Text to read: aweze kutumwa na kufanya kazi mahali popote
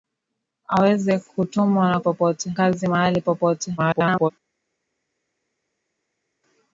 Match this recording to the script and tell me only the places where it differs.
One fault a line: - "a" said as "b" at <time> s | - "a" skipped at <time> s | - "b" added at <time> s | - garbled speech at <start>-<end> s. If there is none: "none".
- "kufanya" said as "popote" at 2.0 s
- garbled speech at 3.8-4.3 s